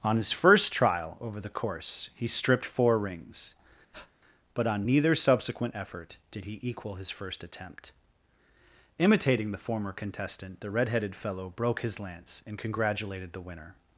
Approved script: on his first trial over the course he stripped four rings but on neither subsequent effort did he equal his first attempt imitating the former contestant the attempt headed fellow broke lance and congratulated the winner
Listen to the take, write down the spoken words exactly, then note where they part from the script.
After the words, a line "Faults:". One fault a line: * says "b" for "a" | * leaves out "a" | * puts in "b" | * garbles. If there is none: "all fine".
on his first trial over the course he stripped four rings but on neither subsequent effort did he equal his first attempt imitating the former contestant the red headed fellow broke his lance and congratulated the winner
Faults:
* says "red" for "attempt"
* puts in "his"